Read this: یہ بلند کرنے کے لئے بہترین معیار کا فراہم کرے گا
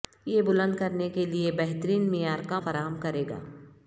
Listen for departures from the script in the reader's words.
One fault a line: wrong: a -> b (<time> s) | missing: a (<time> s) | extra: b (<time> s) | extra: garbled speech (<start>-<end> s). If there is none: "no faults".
no faults